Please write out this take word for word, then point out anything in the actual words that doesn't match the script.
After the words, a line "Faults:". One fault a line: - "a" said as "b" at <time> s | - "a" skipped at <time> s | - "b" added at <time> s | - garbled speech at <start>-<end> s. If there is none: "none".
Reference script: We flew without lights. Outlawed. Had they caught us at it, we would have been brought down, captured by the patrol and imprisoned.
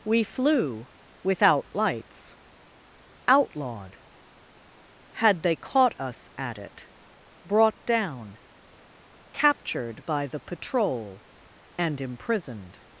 We flew without lights. Outlawed. Had they caught us at it, brought down, captured by the patrol and imprisoned.
Faults:
- "we would have been" skipped at 6.9 s